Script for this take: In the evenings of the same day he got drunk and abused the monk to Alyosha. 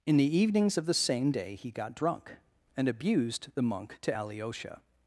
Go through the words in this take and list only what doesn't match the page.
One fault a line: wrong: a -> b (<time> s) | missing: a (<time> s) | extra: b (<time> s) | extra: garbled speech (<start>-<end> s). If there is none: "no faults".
no faults